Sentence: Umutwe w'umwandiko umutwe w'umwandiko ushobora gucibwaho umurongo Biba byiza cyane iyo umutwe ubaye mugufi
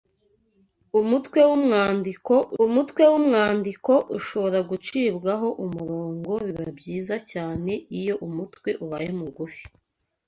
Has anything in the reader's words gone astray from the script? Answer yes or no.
no